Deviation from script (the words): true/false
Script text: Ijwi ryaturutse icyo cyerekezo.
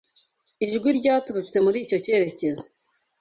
true